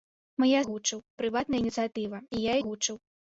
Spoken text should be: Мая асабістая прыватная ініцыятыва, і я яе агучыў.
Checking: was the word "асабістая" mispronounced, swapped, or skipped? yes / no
yes